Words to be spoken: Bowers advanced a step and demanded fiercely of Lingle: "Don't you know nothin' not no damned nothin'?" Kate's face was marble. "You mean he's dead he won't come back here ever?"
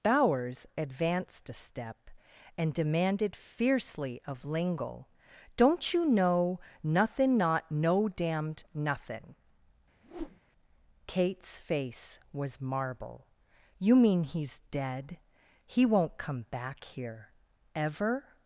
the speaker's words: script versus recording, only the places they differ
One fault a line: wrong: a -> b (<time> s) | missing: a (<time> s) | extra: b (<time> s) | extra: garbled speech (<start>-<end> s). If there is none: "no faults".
no faults